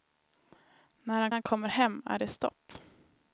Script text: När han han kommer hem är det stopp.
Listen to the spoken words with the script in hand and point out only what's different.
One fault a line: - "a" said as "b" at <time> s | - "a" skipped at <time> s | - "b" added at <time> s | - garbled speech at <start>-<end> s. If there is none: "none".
none